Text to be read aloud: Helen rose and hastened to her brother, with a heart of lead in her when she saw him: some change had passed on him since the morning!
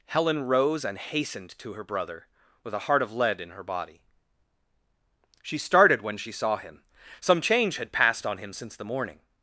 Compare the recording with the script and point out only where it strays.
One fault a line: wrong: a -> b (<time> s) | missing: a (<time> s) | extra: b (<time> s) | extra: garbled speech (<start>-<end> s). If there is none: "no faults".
extra: body She started (3.6 s)